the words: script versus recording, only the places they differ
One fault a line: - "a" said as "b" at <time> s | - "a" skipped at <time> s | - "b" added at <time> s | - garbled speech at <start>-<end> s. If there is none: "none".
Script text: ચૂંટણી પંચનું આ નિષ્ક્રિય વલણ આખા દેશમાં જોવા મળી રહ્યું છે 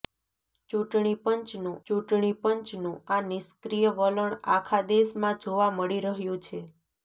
- "ચૂંટણી પંચનું" added at 1.9 s